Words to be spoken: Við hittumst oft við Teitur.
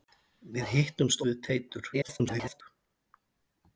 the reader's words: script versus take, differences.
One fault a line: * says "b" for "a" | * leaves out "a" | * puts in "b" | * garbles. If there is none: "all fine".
* leaves out "oft"
* garbles